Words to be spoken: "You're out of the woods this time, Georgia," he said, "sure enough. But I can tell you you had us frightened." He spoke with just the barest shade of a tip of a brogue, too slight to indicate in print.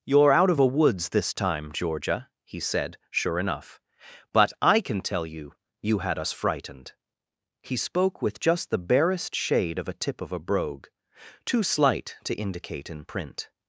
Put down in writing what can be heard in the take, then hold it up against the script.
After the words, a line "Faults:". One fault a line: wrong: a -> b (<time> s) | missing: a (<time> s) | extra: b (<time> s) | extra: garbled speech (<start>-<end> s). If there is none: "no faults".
"You're out of a woods this time, Georgia," he said, "sure enough. But I can tell you you had us frightened." He spoke with just the barest shade of a tip of a brogue, too slight to indicate in print.
Faults:
wrong: the -> a (0.6 s)